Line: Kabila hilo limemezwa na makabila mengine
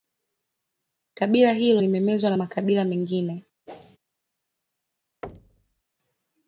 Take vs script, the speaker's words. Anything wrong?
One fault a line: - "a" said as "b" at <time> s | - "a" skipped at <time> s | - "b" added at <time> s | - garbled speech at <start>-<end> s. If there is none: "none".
none